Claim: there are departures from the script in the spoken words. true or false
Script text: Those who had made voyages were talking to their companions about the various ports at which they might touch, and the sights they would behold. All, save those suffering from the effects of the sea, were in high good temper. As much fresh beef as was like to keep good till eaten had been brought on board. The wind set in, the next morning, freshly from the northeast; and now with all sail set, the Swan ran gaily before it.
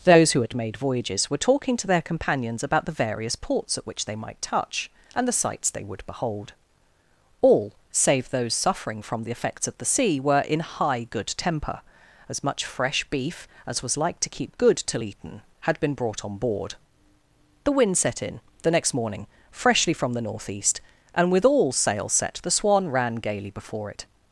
true